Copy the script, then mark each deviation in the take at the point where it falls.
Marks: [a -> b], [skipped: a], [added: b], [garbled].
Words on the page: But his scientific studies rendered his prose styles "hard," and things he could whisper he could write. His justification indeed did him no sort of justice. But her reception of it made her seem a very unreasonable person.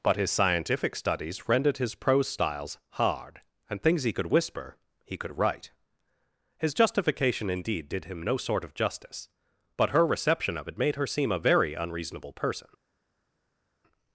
But his scientific studies rendered his prose styles "hard," and things he could whisper he could write. His justification indeed did him no sort of justice. But her reception of it made her seem a very unreasonable person.